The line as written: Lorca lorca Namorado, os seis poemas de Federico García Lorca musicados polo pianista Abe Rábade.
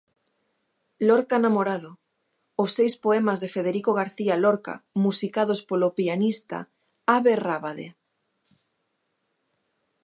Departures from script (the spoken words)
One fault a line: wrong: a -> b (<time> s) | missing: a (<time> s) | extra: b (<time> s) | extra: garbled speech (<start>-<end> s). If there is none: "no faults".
missing: lorca (1.4 s)